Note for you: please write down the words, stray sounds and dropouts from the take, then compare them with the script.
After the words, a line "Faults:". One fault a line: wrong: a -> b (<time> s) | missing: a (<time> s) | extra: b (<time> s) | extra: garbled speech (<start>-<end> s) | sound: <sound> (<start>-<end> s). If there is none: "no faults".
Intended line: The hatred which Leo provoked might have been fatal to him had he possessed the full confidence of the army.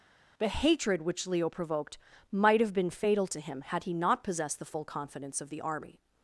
The hatred which Leo provoked might have been fatal to him had he not possessed the full confidence of the army.
Faults:
extra: not (3.9 s)